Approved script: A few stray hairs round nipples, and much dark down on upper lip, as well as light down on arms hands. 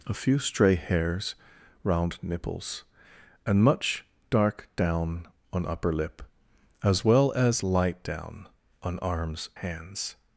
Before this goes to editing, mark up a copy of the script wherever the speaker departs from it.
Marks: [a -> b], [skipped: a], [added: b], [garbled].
A few stray hairs round nipples, and much dark down on upper lip, as well as light down on arms hands.